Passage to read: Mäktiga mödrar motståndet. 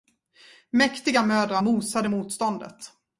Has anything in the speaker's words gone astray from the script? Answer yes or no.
yes